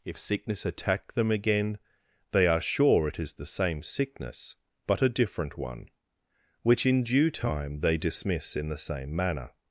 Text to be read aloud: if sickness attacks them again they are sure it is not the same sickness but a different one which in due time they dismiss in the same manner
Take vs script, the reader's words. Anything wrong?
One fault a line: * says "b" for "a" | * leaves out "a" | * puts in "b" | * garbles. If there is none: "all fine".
* says "attack" for "attacks"
* leaves out "not"